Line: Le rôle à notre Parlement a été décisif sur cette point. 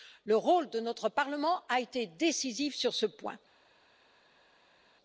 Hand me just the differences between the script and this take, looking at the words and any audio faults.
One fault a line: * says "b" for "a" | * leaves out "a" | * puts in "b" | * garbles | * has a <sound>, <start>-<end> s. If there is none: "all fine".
* says "de" for "à"
* says "ce" for "cette"